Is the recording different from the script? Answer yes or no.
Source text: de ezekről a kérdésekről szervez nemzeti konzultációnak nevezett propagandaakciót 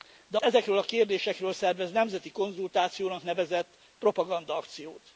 no